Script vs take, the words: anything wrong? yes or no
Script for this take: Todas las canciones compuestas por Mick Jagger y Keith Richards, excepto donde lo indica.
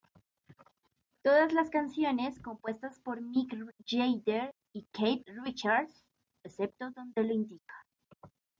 no